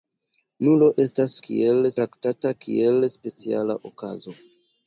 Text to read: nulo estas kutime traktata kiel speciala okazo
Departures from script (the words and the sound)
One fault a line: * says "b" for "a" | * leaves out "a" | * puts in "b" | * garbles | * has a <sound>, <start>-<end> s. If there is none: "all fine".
* says "kiel" for "kutime"